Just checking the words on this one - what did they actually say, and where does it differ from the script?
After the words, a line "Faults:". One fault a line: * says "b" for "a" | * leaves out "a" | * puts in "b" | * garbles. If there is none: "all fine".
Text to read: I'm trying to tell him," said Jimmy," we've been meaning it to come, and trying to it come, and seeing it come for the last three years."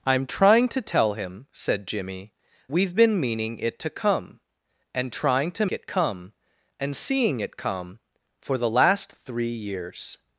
I'm trying to tell him," said Jimmy," we've been meaning it to come, and trying to it come, and seeing it come for the last three years."
Faults:
all fine